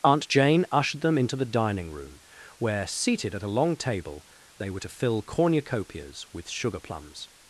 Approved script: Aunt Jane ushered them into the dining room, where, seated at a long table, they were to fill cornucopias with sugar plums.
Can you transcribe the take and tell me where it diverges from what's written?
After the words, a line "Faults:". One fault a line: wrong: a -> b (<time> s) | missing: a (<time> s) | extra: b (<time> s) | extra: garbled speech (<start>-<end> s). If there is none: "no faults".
Aunt Jane ushered them into the dining room, where, seated at a long table, they were to fill cornucopias with sugar plums.
Faults:
no faults